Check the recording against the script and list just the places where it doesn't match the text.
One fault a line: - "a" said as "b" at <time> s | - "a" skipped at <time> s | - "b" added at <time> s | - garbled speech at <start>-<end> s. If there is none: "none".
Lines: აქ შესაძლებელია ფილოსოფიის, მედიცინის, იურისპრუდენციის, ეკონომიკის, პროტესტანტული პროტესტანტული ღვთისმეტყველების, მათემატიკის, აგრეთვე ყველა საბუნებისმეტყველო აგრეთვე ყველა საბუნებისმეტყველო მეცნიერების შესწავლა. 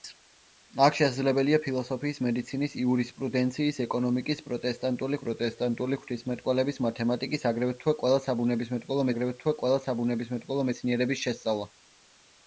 none